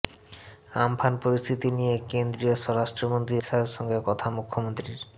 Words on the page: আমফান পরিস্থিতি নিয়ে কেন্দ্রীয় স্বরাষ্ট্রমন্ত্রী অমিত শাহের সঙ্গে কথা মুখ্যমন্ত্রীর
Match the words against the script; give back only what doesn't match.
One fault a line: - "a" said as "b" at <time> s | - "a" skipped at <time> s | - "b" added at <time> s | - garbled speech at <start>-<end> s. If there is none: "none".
- "অমিত" skipped at 3.4 s